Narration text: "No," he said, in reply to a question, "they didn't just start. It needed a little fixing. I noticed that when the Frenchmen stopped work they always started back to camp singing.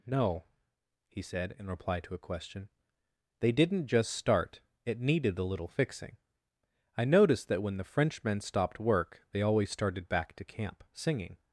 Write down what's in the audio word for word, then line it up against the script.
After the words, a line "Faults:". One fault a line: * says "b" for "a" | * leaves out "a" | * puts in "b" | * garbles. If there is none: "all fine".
"No," he said, in reply to a question, "they didn't just start. It needed a little fixing. I noticed that when the Frenchmen stopped work they always started back to camp singing.
Faults:
all fine